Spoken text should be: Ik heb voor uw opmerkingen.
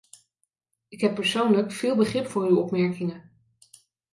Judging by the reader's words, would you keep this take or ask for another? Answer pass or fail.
fail